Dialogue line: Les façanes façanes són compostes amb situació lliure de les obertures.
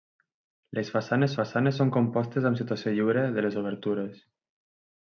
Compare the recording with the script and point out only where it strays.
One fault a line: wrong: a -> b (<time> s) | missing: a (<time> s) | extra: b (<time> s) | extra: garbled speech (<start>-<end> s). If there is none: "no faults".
no faults